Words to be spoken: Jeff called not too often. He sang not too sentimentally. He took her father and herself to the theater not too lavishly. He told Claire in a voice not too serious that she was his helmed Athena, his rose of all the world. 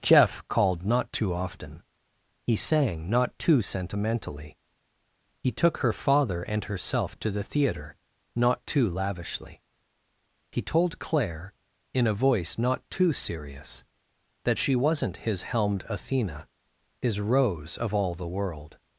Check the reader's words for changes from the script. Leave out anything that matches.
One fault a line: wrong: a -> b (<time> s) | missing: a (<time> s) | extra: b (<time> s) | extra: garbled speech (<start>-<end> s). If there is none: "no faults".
wrong: was -> wasn't (14.8 s)